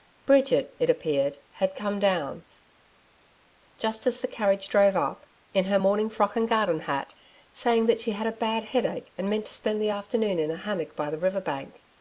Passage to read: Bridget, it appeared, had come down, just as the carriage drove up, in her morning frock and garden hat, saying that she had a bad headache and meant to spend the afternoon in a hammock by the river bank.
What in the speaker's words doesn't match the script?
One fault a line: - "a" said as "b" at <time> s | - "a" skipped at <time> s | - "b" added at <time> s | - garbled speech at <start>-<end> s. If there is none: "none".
none